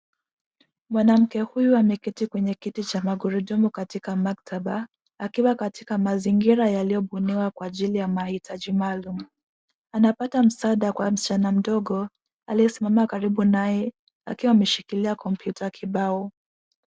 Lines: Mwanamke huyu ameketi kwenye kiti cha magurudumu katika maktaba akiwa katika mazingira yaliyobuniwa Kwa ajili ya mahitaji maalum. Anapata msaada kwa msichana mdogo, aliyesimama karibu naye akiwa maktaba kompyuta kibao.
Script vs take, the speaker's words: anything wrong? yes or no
yes